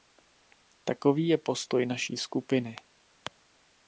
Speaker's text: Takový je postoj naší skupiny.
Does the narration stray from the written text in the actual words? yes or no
no